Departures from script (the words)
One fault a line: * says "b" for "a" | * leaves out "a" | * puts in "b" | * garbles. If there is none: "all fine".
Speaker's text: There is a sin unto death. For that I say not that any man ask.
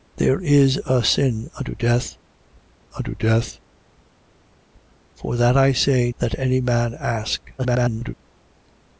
* puts in "unto death"
* leaves out "not"
* garbles